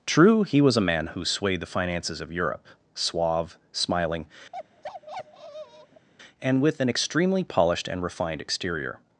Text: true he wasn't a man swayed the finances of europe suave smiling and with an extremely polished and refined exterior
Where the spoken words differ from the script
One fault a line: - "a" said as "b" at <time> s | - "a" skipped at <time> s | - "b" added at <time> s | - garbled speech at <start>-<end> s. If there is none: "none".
- "wasn't" said as "was" at 0.6 s
- "who" added at 1.1 s